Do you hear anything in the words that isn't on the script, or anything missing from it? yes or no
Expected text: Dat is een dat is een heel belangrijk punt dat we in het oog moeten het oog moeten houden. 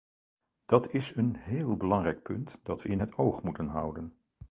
yes